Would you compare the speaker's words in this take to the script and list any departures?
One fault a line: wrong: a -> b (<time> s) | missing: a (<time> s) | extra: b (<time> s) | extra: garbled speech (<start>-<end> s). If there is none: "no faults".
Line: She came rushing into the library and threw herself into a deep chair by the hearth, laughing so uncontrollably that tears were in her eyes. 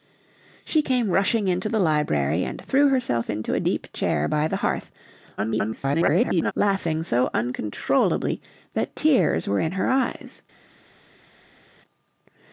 extra: garbled speech (5.4-6.5 s)